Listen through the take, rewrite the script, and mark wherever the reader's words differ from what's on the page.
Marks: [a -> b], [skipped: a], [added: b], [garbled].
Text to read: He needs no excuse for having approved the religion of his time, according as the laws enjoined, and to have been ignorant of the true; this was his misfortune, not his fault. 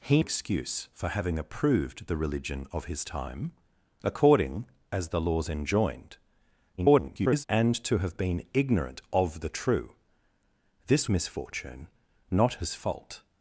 He [skipped: needs no] excuse for having approved the religion of his time, according as the laws enjoined, [garbled] and to have been ignorant of the true; this [skipped: was his] misfortune, not his fault.